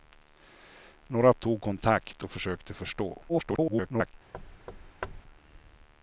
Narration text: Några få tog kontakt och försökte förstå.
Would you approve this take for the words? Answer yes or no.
no